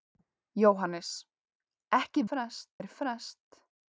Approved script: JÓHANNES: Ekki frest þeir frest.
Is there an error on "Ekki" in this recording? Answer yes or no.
no